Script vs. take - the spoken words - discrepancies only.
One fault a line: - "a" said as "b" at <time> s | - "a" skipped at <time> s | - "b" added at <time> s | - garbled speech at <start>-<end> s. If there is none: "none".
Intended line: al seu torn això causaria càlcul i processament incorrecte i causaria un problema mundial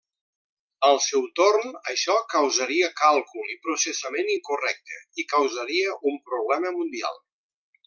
none